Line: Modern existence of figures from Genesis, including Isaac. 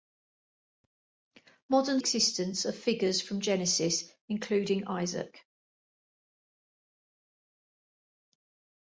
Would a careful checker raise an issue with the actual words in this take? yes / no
no